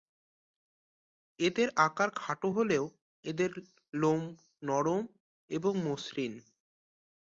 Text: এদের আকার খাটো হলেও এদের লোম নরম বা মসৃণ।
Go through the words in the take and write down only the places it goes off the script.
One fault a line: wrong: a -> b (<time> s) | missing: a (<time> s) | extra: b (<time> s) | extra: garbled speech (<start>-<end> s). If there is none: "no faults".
wrong: বা -> এবং (5.5 s)